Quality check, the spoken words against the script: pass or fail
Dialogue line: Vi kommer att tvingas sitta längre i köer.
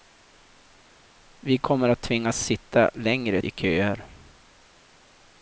pass